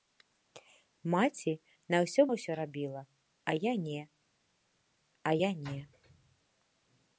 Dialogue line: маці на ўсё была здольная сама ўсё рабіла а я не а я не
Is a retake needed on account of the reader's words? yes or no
yes